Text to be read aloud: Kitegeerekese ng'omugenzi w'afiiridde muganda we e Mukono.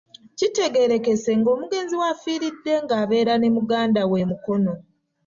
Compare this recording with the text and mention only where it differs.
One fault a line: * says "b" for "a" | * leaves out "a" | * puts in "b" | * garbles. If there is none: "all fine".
* puts in "ng'abeera ne"